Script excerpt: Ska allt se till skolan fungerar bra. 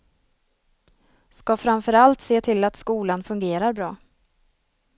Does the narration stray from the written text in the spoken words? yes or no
yes